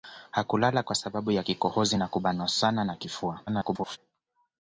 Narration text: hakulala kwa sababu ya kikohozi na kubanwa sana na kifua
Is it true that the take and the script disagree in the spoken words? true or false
true